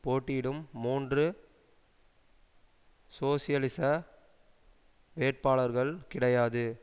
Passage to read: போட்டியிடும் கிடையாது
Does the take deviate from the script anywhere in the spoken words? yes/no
yes